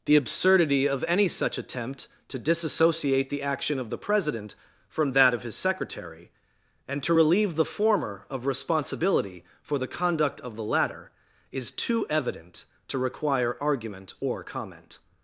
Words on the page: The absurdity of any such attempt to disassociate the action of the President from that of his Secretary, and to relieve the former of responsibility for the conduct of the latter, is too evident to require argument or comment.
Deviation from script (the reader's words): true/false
false